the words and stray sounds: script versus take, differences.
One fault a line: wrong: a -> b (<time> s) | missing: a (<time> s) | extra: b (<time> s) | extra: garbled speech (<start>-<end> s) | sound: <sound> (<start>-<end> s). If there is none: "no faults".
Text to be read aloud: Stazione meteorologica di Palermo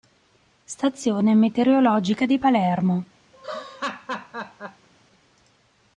sound: laugh (3.3-4.9 s)